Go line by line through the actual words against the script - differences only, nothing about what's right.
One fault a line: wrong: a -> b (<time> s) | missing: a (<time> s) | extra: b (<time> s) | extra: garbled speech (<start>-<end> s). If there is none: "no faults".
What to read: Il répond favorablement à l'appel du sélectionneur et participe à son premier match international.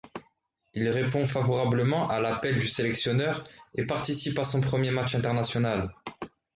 no faults